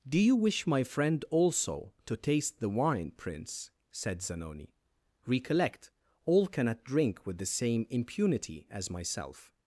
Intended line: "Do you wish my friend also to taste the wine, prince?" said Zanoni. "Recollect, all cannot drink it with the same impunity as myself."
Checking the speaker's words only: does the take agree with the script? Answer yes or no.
no